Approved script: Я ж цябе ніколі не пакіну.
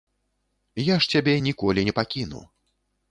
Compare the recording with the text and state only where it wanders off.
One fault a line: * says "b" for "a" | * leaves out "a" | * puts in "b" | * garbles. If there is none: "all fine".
all fine